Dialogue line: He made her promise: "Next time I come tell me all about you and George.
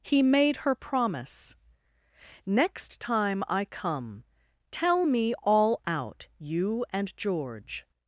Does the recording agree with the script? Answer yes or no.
no